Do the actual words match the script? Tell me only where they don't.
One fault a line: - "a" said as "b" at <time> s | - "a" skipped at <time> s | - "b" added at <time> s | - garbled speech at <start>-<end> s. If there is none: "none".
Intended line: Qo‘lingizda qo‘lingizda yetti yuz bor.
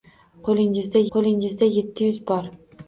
none